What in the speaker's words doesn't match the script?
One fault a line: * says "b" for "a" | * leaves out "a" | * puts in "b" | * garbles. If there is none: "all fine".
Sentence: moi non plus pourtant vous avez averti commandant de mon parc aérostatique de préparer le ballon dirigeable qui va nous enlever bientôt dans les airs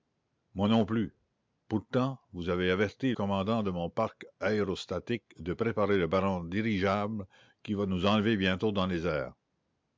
all fine